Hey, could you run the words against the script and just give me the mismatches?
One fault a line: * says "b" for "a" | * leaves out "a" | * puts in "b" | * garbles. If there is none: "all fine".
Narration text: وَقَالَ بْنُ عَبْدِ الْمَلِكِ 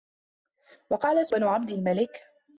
all fine